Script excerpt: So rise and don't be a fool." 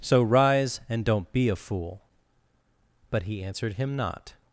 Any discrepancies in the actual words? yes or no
yes